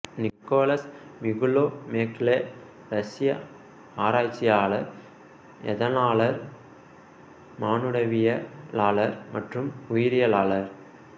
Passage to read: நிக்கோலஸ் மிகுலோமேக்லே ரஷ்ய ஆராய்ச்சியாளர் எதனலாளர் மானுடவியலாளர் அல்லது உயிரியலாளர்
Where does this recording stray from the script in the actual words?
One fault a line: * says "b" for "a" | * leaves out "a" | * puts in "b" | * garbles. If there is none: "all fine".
* says "மற்றும்" for "அல்லது"